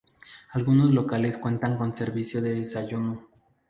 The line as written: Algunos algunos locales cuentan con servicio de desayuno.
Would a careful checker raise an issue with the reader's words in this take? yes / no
yes